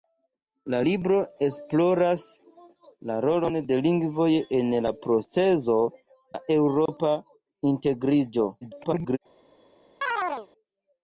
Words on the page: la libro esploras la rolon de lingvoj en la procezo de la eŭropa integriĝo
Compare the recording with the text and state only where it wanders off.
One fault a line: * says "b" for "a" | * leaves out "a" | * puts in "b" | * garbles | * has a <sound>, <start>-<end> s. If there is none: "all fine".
* leaves out "de"
* has a dropout, 6.9-6.9 s
* garbles
* has a chirp, 10.0-10.5 s